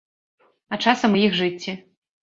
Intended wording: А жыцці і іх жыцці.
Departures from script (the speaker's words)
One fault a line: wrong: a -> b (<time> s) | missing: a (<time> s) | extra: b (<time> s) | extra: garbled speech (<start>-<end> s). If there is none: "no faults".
wrong: жыцці -> часам (0.9 s)